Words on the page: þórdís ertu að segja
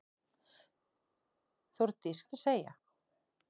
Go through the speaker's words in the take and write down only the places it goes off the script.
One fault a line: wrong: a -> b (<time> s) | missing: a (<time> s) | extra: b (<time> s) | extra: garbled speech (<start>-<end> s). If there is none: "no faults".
no faults